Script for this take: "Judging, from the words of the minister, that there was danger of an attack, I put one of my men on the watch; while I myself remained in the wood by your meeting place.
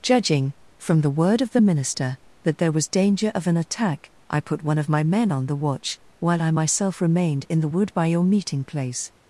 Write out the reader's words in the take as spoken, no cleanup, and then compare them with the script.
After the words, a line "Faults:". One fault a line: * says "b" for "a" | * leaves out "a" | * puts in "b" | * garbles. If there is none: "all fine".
"Judging, from the word of the minister, that there was danger of an attack, I put one of my men on the watch; while I myself remained in the wood by your meeting place.
Faults:
* says "word" for "words"